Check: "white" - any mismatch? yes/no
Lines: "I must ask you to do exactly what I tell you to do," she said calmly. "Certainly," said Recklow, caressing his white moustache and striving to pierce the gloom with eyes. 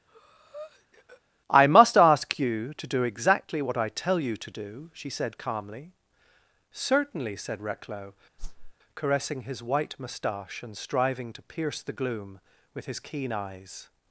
no